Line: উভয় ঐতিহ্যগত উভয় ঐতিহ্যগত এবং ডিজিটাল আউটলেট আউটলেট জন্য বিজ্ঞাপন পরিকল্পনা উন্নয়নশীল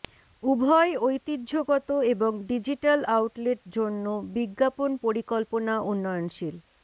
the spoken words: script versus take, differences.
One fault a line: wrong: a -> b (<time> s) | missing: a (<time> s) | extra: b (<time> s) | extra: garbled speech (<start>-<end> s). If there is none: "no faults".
missing: উভয় ঐতিহ্যগত (1.9 s)
missing: আউটলেট (3.6 s)